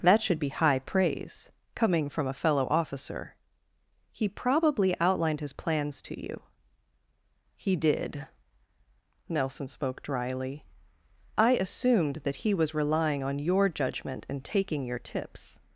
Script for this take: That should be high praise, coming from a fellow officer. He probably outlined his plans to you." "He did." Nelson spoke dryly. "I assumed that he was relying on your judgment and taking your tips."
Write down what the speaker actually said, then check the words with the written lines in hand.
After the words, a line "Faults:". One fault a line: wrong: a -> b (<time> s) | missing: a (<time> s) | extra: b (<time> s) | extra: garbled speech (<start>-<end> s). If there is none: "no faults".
That should be high praise, coming from a fellow officer. He probably outlined his plans to you." "He did." Nelson spoke dryly. "I assumed that he was relying on your judgment and taking your tips."
Faults:
no faults